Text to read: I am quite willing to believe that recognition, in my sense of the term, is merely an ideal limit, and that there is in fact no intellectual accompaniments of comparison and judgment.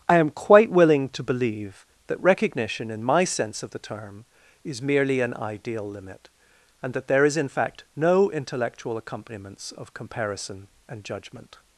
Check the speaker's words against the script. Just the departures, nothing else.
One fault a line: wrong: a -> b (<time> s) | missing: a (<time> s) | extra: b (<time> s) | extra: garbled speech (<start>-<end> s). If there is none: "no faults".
no faults